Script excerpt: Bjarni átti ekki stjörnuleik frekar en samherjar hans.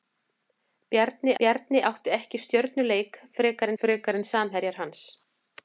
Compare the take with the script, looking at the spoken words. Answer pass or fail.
fail